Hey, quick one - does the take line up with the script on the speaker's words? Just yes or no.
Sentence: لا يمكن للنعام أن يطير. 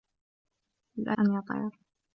no